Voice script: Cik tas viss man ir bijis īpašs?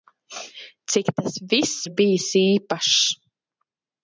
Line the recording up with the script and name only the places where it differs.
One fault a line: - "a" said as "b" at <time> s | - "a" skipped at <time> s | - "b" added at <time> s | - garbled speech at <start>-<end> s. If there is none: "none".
- "man" skipped at 1.8 s